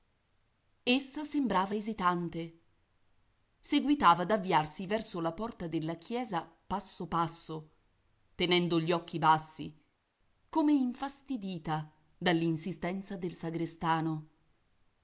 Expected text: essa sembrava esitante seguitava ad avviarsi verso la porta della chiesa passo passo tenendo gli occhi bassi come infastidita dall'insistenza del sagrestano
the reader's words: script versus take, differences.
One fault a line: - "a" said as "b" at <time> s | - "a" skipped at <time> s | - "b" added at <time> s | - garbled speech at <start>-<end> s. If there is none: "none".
none